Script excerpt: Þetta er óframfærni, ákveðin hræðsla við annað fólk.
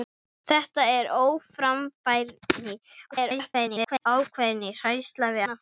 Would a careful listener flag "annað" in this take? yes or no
yes